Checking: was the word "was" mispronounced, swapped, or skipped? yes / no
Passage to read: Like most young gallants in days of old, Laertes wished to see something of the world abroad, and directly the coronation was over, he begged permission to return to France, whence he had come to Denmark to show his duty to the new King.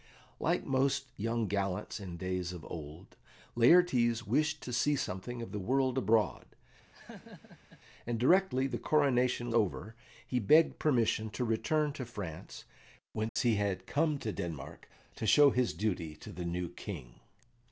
yes